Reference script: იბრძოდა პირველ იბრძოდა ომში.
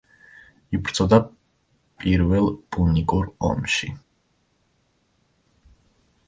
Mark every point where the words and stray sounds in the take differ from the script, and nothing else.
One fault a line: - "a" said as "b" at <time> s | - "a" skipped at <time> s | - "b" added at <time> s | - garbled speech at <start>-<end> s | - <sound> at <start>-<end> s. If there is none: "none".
- "იბრძოდა" said as "პუნიკურ" at 2.8 s